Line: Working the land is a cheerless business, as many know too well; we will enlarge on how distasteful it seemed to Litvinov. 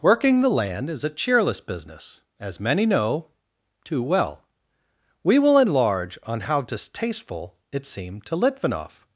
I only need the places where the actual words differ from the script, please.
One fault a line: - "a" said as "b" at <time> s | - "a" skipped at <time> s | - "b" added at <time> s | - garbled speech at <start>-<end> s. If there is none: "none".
none